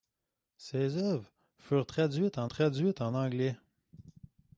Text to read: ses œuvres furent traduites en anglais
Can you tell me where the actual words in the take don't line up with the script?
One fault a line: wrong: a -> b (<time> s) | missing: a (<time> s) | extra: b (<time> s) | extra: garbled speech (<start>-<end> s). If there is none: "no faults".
extra: traduites en (2.5 s)